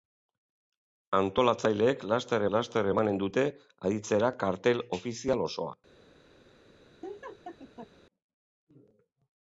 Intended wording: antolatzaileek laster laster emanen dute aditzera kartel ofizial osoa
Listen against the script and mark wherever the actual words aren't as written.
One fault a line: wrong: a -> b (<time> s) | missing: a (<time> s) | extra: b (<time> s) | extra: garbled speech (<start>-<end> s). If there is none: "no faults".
no faults